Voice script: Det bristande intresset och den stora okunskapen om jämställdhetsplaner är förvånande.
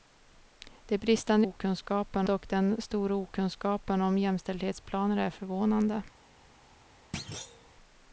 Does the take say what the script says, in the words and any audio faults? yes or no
no